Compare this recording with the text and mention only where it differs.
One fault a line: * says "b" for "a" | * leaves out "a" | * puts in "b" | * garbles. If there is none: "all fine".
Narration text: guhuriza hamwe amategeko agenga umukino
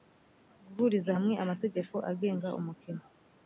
all fine